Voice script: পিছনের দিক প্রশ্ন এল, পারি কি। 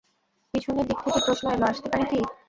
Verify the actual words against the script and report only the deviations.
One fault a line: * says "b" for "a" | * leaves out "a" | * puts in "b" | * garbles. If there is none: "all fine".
* puts in "থেকে"
* puts in "আসতে"